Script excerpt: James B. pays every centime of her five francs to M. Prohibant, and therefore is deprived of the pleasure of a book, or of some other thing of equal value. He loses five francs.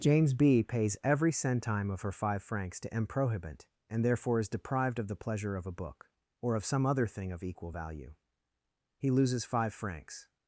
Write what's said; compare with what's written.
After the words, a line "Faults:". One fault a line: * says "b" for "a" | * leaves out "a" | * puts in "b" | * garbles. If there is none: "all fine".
James B. pays every centime of her five francs to M. Prohibant, and therefore is deprived of the pleasure of a book, or of some other thing of equal value. He loses five francs.
Faults:
all fine